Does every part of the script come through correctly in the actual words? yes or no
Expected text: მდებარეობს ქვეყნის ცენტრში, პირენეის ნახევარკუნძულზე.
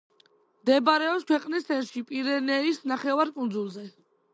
yes